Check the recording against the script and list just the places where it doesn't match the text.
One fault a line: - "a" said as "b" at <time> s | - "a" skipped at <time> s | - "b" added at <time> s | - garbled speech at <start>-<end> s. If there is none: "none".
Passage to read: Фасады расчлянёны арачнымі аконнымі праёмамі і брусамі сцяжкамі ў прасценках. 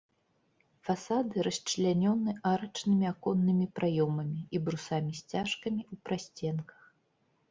none